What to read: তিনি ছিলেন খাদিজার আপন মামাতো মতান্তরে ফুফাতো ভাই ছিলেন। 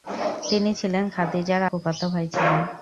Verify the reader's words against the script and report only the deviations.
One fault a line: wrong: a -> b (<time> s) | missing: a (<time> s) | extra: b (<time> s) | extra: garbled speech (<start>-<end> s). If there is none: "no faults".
missing: আপন মামাতো মতান্তরে (1.6 s)